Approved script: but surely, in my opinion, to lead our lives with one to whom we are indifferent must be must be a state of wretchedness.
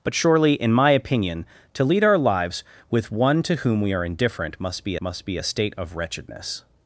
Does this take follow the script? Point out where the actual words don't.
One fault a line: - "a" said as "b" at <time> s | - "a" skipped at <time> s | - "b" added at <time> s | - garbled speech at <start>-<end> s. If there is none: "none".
none